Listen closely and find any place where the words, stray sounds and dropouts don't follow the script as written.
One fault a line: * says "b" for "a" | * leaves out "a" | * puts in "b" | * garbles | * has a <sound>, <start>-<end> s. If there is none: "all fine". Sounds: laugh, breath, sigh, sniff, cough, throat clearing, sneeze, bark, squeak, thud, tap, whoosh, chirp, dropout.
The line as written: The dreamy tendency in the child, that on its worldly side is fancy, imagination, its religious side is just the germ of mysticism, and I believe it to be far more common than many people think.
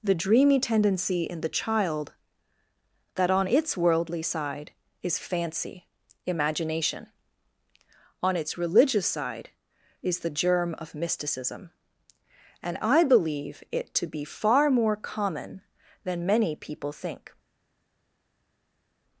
* puts in "on"
* leaves out "just"